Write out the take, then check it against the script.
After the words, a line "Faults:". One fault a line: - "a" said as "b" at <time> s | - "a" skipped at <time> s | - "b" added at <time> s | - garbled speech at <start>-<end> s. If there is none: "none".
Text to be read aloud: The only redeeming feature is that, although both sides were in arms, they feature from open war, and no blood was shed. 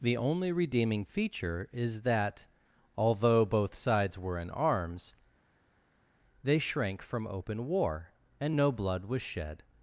The only redeeming feature is that, although both sides were in arms, they shrank from open war, and no blood was shed.
Faults:
- "feature" said as "shrank" at 6.6 s